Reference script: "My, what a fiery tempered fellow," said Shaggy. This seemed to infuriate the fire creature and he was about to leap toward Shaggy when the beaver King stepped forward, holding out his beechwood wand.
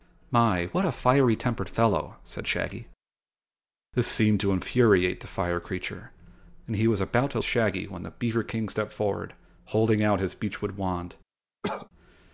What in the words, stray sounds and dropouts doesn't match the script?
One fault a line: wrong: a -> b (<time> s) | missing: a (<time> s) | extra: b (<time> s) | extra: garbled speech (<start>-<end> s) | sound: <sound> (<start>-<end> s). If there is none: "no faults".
missing: leap toward (7.4 s)
sound: cough (11.6-11.9 s)